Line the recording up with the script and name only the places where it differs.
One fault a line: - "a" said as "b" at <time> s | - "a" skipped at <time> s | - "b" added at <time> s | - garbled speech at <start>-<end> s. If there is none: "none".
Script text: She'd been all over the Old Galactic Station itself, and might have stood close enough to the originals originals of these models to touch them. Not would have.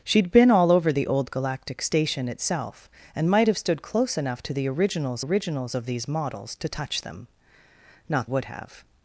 none